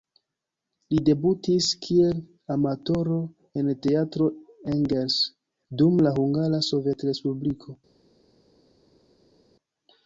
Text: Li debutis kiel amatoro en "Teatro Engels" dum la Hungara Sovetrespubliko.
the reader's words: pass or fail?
pass